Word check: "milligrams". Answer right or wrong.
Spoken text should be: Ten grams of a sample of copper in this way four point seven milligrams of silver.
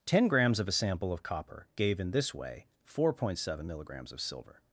right